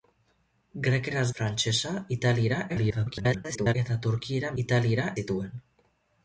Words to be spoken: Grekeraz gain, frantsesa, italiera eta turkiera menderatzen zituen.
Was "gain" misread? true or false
true